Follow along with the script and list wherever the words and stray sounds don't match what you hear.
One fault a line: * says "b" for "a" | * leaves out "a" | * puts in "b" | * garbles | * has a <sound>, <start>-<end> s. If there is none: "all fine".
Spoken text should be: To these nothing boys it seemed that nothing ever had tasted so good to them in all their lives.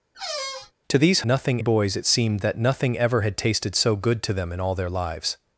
* has a squeak, 0.1-0.7 s